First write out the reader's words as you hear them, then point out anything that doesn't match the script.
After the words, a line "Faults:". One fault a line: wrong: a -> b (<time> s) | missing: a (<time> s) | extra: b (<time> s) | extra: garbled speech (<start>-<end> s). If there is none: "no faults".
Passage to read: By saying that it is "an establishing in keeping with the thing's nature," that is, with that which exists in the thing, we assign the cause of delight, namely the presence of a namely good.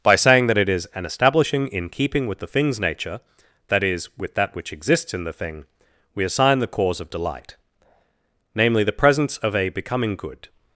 By saying that it is "an establishing in keeping with the thing's nature," that is, with that which exists in the thing, we assign the cause of delight, namely the presence of a becoming good.
Faults:
wrong: namely -> becoming (9.7 s)